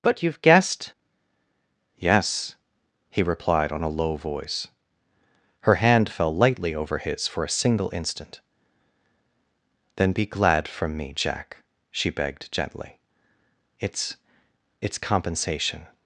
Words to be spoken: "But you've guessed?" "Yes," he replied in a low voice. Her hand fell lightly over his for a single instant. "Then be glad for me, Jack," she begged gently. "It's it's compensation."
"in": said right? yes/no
no